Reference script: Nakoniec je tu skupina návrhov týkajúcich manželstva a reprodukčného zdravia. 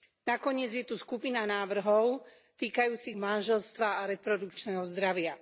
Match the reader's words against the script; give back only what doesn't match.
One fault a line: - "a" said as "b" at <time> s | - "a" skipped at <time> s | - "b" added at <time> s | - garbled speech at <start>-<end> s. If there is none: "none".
none